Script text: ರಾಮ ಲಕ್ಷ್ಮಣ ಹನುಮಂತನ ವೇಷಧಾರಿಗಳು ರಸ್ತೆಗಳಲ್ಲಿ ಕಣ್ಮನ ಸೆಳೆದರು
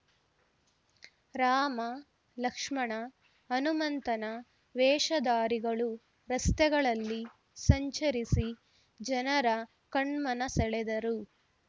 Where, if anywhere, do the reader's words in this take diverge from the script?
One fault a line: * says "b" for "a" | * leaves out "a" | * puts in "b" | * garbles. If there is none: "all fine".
* puts in "ಸಂಚರಿಸಿ ಜನರ"